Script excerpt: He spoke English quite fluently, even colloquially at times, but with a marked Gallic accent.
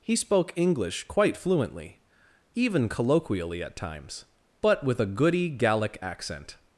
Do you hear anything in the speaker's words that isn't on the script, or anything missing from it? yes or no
yes